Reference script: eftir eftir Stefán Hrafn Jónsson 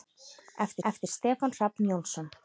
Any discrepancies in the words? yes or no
no